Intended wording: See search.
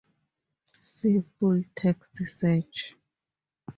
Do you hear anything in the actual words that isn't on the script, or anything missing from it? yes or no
yes